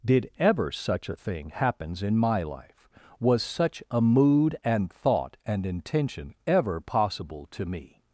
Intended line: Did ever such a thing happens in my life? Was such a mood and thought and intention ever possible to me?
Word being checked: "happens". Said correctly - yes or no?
yes